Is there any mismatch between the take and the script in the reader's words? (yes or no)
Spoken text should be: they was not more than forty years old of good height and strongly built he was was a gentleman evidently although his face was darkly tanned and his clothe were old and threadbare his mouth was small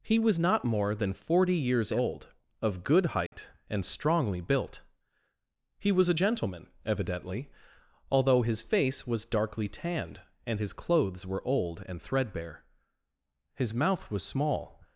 yes